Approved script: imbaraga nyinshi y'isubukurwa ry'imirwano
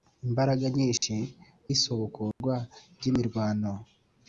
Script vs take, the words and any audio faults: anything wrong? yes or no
yes